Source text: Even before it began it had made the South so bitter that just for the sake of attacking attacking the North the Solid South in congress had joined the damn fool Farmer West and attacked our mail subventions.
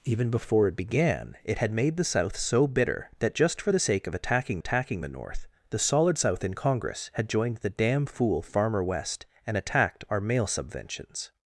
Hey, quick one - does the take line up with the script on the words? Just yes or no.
yes